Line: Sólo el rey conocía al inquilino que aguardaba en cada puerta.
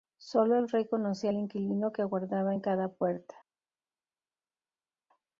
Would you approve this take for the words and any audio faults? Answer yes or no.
yes